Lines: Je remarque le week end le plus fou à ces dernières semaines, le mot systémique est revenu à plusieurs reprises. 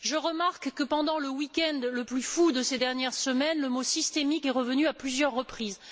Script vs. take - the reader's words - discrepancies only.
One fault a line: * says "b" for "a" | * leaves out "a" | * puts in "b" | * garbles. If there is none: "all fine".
* puts in "que pendant"
* says "de" for "à"